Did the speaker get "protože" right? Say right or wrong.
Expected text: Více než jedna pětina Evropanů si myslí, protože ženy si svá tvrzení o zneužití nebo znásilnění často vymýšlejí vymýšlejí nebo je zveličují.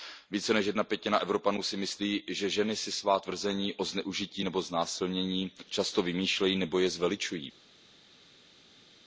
wrong